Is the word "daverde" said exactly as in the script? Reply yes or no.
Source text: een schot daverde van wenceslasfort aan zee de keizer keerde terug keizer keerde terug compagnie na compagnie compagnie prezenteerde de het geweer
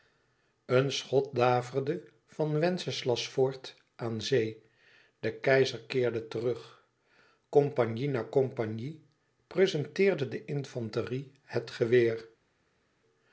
yes